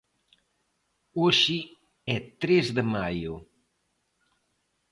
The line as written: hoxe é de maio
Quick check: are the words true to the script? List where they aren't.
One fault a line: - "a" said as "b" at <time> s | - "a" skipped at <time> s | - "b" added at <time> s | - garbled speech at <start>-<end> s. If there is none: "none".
- "tres" added at 2.4 s